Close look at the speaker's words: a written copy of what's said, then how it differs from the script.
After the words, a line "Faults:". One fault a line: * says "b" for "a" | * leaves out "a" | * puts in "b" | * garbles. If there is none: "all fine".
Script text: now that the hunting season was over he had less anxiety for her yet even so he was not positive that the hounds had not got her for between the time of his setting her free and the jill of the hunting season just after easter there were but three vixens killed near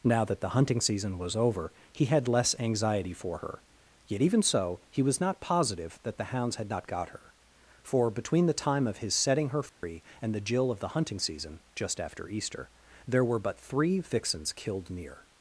now that the hunting season was over he had less anxiety for her yet even so he was not positive that the hounds had not got her for between the time of his setting her free and the jill of the hunting season just after easter there were but three vixens killed near
Faults:
all fine